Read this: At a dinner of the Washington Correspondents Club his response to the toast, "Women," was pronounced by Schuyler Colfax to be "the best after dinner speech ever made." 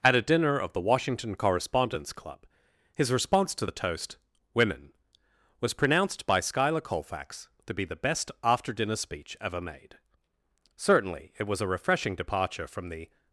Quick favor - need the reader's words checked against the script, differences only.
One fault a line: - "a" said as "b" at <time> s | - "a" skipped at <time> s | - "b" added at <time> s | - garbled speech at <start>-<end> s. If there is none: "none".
- "Certainly it was a refreshing departure from the" added at 10.8 s